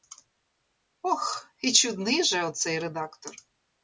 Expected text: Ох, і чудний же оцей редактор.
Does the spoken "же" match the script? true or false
true